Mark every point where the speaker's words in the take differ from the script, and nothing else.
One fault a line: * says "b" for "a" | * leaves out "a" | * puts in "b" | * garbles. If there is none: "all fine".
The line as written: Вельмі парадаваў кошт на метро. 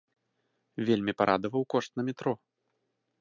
all fine